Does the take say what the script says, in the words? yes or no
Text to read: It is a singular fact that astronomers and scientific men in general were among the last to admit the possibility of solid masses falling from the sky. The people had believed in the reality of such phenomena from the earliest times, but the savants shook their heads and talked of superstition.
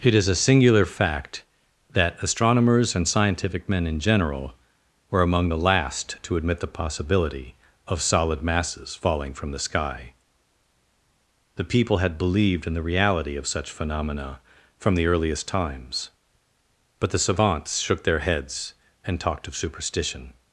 yes